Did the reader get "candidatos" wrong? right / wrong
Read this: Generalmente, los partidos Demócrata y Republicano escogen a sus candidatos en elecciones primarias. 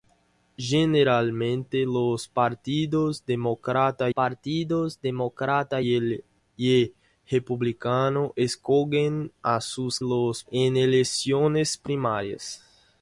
wrong